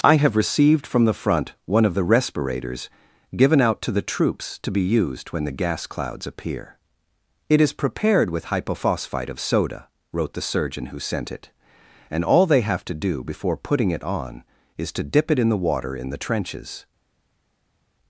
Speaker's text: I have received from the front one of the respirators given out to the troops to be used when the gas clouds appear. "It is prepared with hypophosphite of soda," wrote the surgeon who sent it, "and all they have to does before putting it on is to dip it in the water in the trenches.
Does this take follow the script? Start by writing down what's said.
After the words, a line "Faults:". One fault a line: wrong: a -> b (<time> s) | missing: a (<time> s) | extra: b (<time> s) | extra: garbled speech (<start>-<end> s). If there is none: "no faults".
I have received from the front one of the respirators given out to the troops to be used when the gas clouds appear. "It is prepared with hypophosphite of soda," wrote the surgeon who sent it, "and all they have to do before putting it on is to dip it in the water in the trenches.
Faults:
wrong: does -> do (12.9 s)